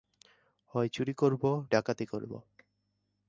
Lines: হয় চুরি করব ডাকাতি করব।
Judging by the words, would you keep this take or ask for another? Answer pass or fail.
pass